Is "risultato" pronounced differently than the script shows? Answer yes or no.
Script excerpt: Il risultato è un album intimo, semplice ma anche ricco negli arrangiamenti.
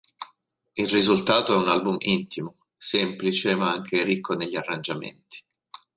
no